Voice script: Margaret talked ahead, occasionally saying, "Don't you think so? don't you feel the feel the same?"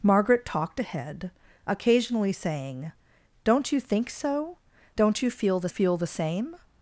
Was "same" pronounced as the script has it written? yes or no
yes